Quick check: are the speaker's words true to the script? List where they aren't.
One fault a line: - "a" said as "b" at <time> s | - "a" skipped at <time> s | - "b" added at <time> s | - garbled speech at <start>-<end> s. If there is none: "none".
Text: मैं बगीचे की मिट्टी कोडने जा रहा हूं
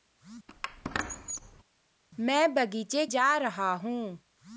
- "की मिट्टी कोडने" skipped at 3.0 s